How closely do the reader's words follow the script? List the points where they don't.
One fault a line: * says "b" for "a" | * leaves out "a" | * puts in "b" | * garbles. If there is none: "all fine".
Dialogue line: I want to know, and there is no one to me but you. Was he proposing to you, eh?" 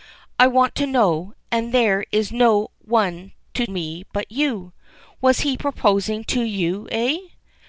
all fine